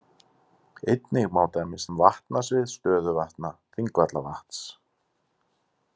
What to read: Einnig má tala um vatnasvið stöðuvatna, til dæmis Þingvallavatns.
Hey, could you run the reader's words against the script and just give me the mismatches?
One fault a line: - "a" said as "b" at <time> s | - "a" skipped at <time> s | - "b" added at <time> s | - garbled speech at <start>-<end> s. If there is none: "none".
- "tala" said as "dæmis" at 1.6 s
- "til dæmis" skipped at 3.5 s